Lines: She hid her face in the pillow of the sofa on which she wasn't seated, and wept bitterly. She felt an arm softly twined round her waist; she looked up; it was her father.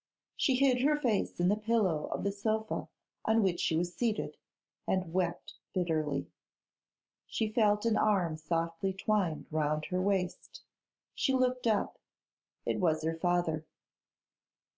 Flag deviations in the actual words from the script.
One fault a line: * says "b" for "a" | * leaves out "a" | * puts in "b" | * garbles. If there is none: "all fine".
* says "was" for "wasn't"